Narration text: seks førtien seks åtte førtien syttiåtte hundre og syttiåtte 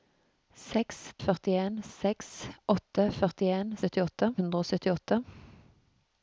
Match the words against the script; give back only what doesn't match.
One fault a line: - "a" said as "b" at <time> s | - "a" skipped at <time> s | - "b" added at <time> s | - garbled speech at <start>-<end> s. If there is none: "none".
none